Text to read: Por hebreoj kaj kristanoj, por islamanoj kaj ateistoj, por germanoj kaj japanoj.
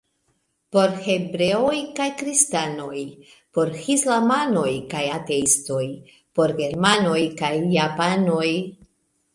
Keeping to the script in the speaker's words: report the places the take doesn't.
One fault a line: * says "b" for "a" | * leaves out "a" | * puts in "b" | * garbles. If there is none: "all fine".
all fine